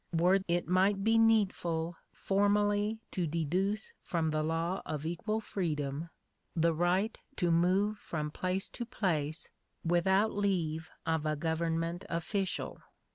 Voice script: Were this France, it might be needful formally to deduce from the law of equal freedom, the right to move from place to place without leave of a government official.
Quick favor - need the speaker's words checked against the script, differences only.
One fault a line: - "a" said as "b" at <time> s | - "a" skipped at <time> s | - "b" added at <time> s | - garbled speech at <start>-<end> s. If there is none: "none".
- "this France" skipped at 0.4 s